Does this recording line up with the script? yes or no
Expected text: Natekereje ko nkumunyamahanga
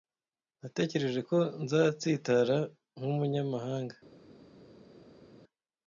no